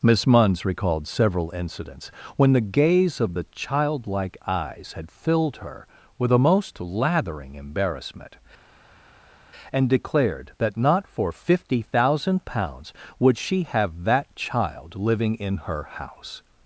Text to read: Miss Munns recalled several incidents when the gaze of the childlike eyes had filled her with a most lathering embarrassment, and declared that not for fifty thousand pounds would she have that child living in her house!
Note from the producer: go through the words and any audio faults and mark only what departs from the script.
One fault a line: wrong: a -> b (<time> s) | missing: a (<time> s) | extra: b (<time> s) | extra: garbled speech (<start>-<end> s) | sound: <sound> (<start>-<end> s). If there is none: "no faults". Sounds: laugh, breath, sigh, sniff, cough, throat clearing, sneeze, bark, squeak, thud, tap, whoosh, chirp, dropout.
no faults